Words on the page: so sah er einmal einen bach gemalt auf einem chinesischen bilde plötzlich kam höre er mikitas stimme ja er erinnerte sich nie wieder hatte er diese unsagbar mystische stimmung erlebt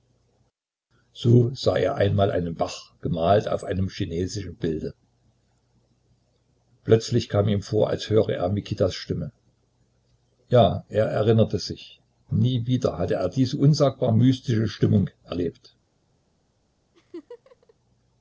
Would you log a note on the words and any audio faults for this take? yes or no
yes